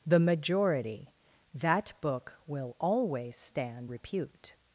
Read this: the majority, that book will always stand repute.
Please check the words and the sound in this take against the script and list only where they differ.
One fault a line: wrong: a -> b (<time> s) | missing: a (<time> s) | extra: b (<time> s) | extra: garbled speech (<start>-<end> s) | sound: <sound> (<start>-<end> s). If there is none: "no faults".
no faults